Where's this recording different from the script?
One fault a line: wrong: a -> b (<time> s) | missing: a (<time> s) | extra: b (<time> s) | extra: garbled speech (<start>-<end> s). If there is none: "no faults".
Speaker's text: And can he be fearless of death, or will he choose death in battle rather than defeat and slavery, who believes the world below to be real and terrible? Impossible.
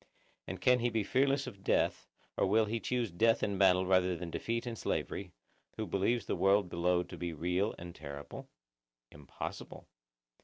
no faults